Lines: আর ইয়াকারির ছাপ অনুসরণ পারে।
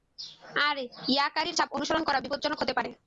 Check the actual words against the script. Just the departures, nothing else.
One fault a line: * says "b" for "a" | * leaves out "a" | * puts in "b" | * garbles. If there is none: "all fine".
* puts in "করা বিপজ্জনক হতে"